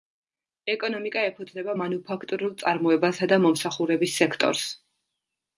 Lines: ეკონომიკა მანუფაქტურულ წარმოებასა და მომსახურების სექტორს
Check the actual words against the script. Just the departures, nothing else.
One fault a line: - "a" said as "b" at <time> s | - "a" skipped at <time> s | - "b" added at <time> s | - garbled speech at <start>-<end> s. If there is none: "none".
- "ეფუძნება" added at 1.3 s